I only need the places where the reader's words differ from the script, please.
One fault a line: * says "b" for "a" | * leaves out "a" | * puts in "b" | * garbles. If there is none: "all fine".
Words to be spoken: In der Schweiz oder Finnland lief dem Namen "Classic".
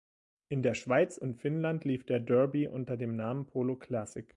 * says "und" for "oder"
* puts in "der Derby unter"
* puts in "Polo"